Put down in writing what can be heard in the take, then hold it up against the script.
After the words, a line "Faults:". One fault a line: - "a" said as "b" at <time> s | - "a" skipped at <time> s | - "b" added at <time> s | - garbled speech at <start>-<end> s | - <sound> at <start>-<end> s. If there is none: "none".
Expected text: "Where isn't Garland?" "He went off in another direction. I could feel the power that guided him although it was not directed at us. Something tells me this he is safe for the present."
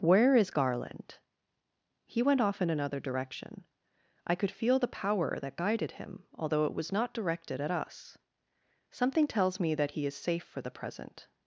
"Where is Garland?" "He went off in another direction. I could feel the power that guided him although it was not directed at us. Something tells me that he is safe for the present."
Faults:
- "isn't" said as "is" at 0.3 s
- "this" said as "that" at 9.7 s